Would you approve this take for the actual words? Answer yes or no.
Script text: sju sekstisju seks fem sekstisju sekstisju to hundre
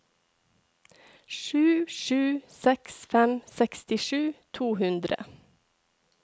no